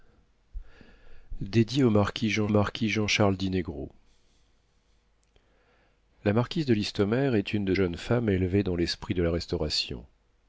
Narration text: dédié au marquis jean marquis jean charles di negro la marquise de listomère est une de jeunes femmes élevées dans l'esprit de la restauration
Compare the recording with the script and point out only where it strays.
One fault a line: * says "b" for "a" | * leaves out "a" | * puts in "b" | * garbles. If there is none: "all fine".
all fine